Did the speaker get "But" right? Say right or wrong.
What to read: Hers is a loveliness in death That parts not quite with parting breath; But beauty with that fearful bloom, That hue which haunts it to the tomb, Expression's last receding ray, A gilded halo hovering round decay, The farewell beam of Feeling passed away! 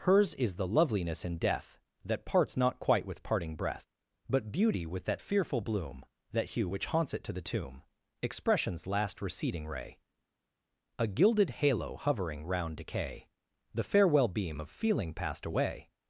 right